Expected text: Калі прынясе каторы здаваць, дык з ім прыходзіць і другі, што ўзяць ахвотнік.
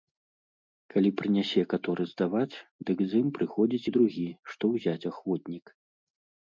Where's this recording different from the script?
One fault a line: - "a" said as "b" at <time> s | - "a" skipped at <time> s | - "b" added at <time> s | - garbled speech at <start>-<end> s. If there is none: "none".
none